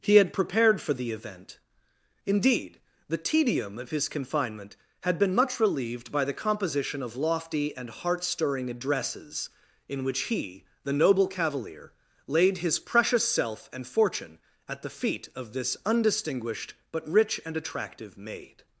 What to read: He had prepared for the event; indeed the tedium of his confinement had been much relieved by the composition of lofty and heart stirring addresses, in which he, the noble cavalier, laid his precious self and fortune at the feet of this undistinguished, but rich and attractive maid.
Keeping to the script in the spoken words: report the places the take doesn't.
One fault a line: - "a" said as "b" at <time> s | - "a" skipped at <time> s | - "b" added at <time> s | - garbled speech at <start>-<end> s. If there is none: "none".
none